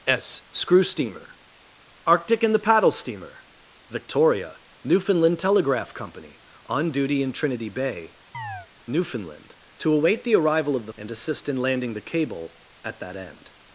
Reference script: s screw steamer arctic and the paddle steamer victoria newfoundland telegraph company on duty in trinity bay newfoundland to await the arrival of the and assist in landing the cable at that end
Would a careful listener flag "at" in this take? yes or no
no